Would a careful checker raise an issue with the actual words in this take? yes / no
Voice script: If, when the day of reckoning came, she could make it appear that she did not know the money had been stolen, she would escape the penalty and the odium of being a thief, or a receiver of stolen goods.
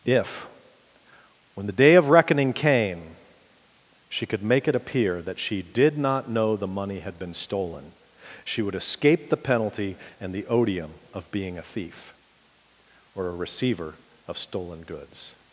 no